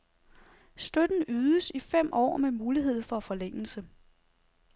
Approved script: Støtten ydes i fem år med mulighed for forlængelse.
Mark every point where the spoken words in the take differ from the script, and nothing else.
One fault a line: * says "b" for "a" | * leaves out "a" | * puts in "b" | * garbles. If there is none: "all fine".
all fine